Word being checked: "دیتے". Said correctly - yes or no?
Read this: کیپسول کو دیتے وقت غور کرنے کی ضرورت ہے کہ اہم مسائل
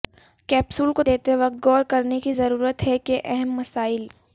yes